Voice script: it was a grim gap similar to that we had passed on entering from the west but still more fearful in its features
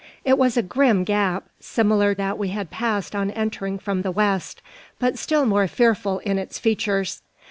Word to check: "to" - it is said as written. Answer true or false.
false